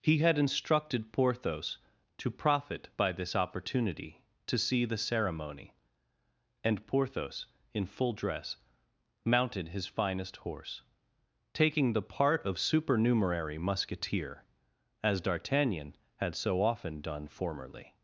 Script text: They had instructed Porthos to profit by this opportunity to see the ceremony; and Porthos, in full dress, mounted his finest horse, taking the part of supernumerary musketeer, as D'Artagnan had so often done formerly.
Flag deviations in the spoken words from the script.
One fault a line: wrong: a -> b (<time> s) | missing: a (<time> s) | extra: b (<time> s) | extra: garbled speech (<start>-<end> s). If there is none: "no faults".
wrong: They -> He (0.0 s)